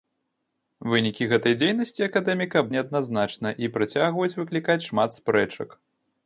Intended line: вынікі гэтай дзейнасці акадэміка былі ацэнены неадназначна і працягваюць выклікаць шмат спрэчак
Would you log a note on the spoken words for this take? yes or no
yes